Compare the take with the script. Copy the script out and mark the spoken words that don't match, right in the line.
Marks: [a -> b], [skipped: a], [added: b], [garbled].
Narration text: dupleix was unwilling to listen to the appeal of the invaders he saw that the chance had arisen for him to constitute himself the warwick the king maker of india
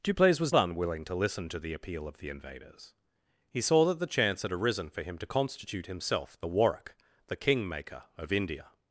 dupleix was unwilling to listen to the appeal of the invaders he saw that the chance had arisen for him to constitute himself the warwick the king maker of india